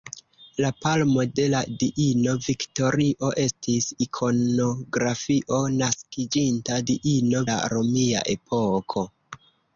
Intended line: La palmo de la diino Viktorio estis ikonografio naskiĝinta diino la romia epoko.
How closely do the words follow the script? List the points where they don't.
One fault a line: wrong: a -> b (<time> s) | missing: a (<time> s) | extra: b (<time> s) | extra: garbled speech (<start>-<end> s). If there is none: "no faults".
no faults